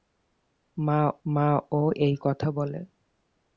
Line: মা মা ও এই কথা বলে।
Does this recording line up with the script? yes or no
yes